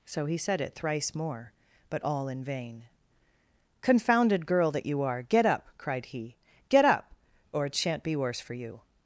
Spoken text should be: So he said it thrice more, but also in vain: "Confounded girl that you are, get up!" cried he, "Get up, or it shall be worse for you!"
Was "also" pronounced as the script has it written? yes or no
no